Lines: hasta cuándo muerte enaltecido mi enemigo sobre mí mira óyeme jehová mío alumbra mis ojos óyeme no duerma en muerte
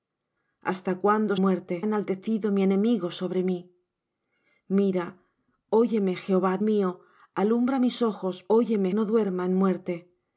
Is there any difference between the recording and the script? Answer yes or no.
no